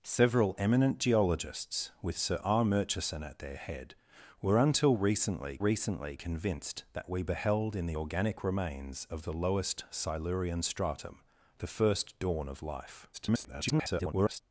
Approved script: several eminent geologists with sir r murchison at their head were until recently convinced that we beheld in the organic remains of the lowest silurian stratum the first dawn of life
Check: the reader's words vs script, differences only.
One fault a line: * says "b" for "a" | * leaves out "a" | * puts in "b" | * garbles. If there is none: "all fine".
* puts in "recently"
* garbles